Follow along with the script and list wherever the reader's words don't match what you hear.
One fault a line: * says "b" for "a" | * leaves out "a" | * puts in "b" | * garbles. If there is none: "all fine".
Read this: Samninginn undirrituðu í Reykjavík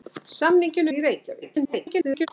* leaves out "undirrituðu"
* garbles